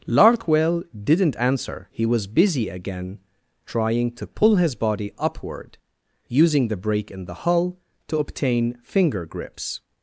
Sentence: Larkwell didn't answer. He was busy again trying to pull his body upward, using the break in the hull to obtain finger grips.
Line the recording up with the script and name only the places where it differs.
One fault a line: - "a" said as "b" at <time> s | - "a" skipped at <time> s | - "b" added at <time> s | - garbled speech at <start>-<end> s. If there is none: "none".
none